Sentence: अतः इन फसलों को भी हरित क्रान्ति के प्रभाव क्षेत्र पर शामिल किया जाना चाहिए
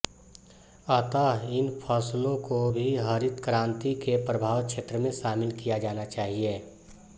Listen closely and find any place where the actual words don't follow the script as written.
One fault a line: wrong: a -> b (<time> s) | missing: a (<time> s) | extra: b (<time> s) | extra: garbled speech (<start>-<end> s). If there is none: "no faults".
wrong: पर -> में (5.0 s)